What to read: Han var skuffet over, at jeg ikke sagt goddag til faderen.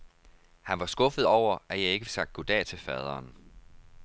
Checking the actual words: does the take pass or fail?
pass